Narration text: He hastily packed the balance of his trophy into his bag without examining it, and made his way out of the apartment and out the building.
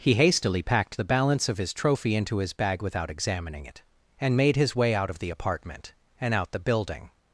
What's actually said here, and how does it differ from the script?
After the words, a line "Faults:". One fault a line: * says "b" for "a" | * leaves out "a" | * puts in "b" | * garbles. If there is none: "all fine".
He hastily packed the balance of his trophy into his bag without examining it, and made his way out of the apartment and out the building.
Faults:
all fine